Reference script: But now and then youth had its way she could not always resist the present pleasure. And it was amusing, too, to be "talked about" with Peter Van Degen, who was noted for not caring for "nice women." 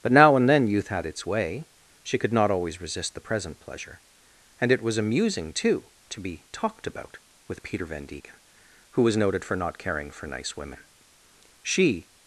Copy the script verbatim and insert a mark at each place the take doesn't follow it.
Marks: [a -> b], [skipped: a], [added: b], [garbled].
But now and then youth had its way she could not always resist the present pleasure. And it was amusing, too, to be "talked about" with Peter Van Degen, who was noted for not caring for "nice women." [added: She]